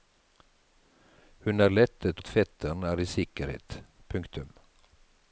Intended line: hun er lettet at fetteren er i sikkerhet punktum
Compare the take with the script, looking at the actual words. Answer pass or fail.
pass